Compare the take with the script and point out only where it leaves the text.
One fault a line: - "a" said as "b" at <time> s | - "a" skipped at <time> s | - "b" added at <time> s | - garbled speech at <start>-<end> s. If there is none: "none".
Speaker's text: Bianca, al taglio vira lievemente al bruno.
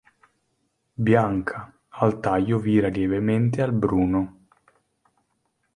none